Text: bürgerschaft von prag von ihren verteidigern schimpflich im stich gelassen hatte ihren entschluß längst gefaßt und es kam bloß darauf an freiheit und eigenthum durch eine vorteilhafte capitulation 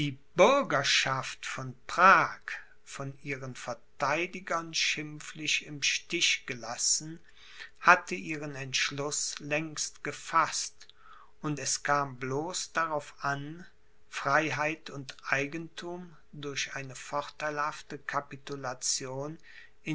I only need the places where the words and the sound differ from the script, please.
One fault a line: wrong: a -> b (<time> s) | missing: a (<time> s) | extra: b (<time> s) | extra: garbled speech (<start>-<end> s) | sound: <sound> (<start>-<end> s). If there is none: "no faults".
no faults